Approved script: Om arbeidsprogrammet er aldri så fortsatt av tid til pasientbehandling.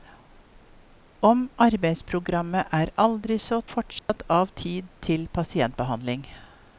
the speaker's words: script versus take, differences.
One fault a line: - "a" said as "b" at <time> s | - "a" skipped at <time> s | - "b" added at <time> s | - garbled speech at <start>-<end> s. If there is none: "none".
none